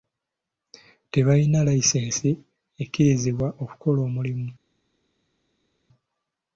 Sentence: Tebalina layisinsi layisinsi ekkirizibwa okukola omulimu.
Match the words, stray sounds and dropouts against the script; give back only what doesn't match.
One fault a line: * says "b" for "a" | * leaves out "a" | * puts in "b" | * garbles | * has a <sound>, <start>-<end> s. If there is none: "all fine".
* leaves out "layisinsi"